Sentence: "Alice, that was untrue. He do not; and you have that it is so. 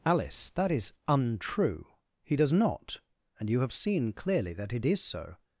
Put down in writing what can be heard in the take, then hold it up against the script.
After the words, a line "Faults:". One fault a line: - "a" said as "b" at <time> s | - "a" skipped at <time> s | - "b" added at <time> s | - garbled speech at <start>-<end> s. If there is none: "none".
"Alice, that is untrue. He does not; and you have seen clearly that it is so.
Faults:
- "was" said as "is" at 0.7 s
- "do" said as "does" at 2.4 s
- "seen clearly" added at 3.7 s